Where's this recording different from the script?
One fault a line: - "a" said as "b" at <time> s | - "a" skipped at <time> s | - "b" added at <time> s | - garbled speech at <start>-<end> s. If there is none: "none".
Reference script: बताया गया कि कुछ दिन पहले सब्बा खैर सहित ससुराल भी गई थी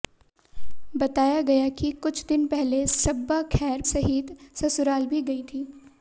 none